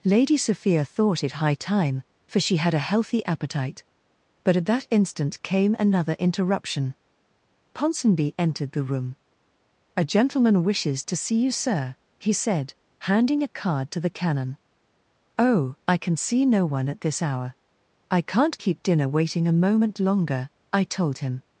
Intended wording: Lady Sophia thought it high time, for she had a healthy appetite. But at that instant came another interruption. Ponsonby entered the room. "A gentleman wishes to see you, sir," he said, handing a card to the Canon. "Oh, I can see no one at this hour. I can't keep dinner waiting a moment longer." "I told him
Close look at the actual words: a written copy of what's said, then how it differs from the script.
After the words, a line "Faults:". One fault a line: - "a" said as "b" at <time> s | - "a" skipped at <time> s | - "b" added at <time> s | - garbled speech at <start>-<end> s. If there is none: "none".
Lady Sophia thought it high time, for she had a healthy appetite. But at that instant came another interruption. Ponsonby entered the room. "A gentleman wishes to see you, sir," he said, handing a card to the Canon. "Oh, I can see no one at this hour. I can't keep dinner waiting a moment longer." "I told him
Faults:
none